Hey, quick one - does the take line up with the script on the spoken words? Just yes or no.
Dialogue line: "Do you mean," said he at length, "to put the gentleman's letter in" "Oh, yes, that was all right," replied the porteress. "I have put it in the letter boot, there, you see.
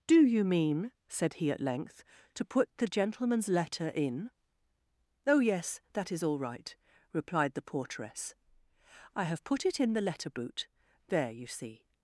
no